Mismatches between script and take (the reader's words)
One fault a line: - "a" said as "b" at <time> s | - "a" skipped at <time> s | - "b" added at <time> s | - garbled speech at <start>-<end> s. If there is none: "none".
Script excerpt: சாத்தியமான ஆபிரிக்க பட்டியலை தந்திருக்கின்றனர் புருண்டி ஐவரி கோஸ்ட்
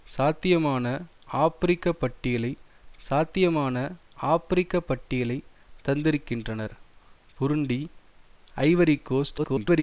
- "சாத்தியமான ஆபிரிக்க பட்டியலை" added at 3.0 s
- garbled speech at 9.4-9.8 s